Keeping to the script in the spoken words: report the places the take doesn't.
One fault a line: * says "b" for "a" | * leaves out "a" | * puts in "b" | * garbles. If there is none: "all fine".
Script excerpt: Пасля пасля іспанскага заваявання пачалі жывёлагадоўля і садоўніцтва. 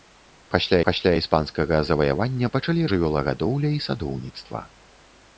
all fine